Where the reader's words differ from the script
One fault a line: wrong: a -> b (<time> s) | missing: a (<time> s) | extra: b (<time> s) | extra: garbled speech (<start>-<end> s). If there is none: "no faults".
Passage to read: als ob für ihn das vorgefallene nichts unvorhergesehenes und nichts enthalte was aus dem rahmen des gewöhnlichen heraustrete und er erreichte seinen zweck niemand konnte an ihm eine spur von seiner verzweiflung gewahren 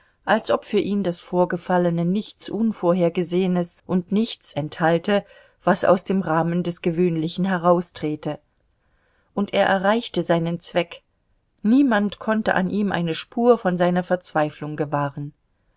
no faults